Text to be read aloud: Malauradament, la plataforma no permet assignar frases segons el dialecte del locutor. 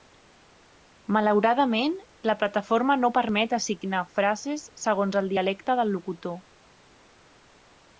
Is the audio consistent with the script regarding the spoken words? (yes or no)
yes